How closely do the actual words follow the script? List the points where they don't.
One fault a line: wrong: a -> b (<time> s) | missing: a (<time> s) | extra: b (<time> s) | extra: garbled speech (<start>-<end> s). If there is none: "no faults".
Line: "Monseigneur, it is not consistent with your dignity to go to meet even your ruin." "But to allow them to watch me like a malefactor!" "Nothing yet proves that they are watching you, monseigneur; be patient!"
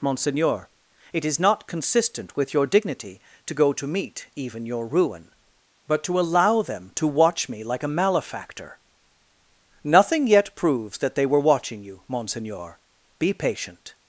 wrong: are -> were (11.3 s)